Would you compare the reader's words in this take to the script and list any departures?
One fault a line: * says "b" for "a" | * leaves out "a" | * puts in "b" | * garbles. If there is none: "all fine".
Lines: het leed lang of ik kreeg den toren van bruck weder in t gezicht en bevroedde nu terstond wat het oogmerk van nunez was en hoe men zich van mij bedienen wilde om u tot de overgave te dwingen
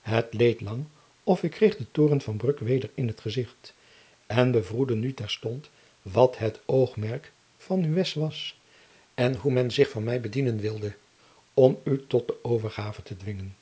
all fine